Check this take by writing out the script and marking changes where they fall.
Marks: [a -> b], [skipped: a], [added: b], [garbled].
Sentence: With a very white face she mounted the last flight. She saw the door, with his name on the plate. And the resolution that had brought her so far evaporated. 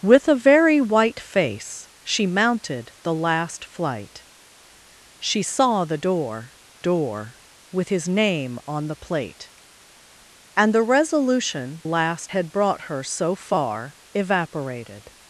With a very white face she mounted the last flight. She saw the door, [added: door] with his name on the plate. And the resolution [that -> last] had brought her so far evaporated.